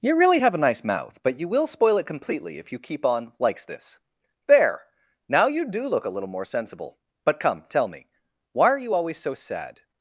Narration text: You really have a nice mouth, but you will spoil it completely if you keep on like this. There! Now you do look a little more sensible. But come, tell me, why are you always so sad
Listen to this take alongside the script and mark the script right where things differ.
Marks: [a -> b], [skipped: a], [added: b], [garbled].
You really have a nice mouth, but you will spoil it completely if you keep on [like -> likes] this. There! Now you do look a little more sensible. But come, tell me, why are you always so sad